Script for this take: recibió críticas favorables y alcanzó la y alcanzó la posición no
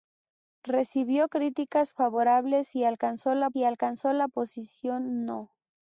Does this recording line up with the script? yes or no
yes